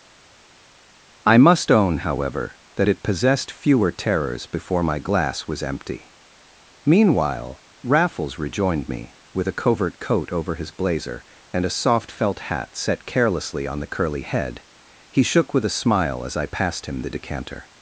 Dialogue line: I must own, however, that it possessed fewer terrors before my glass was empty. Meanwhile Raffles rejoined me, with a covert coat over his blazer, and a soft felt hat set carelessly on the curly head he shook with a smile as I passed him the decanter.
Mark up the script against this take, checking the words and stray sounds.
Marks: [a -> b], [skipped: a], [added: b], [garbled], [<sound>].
I must own, however, that it possessed fewer terrors before my glass was empty. Meanwhile Raffles rejoined me, with a covert coat over his blazer, and a soft felt hat set carelessly on the curly head he shook with a smile as I passed him the decanter.